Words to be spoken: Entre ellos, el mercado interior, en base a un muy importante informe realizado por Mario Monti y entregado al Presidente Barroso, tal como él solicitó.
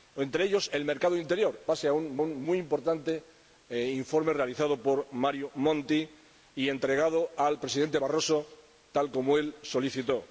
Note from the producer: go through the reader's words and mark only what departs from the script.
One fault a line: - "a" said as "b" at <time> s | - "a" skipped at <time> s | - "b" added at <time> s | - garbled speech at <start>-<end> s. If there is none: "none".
- "en" skipped at 1.6 s
- "un" added at 2.2 s